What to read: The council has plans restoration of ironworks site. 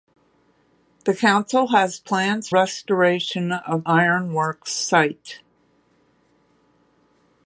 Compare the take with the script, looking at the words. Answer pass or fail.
pass